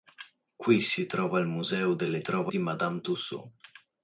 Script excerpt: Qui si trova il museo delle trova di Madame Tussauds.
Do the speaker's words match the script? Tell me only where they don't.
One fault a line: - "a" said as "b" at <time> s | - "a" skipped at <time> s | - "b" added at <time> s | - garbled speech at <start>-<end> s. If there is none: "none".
none